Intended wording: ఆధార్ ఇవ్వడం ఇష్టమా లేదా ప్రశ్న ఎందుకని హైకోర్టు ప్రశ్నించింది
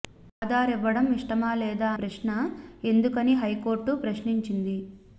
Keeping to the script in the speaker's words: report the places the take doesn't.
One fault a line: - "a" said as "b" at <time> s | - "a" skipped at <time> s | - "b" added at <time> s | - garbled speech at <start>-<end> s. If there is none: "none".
none